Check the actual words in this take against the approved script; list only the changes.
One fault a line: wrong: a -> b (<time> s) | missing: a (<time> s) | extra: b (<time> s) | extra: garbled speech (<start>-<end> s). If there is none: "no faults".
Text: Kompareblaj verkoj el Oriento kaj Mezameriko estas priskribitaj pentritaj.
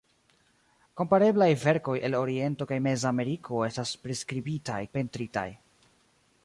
no faults